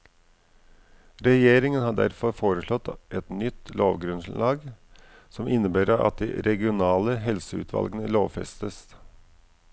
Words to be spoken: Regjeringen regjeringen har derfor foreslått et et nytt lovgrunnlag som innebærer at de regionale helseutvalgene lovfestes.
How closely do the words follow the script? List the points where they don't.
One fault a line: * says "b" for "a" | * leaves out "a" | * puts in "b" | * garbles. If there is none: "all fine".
* leaves out "regjeringen"
* leaves out "et"